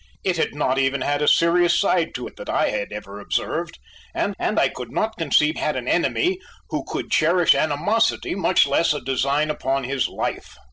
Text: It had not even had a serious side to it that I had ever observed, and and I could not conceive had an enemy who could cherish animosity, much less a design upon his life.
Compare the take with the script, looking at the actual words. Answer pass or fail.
pass